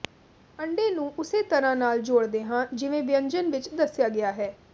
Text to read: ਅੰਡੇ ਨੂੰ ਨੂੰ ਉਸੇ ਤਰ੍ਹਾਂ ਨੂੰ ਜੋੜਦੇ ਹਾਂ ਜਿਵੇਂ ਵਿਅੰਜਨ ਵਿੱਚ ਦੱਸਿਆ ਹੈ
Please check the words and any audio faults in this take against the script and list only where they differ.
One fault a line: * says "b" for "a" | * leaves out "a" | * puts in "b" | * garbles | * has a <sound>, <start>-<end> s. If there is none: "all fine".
* leaves out "ਨੂੰ"
* says "ਨਾਲ" for "ਨੂੰ"
* puts in "ਗਿਆ"